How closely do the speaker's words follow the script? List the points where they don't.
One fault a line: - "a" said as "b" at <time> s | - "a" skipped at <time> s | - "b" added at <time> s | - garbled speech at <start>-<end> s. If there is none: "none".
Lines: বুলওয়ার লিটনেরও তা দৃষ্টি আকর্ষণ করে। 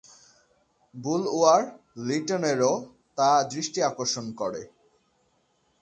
none